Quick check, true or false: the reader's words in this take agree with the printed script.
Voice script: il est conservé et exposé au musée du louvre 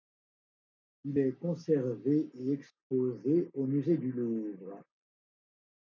true